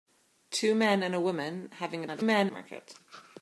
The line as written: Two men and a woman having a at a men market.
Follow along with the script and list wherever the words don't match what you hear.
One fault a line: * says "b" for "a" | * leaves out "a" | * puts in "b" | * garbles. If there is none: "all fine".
all fine